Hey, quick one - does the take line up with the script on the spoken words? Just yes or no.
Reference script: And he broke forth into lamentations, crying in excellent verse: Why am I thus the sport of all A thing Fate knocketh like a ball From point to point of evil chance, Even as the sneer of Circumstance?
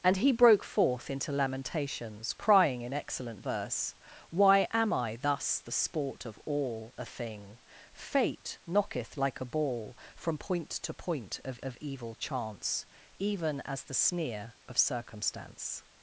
no